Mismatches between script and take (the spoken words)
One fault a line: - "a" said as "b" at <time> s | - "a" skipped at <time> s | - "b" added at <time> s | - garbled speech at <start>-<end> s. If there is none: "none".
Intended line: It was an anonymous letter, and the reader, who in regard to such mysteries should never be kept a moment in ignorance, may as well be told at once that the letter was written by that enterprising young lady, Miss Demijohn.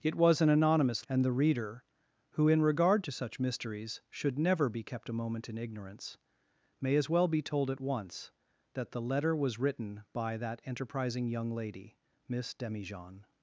- "letter" skipped at 1.1 s